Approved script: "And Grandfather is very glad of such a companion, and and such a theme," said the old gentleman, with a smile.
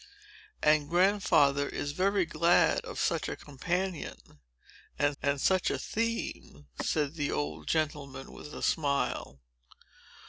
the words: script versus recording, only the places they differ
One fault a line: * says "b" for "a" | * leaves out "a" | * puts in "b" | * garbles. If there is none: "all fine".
all fine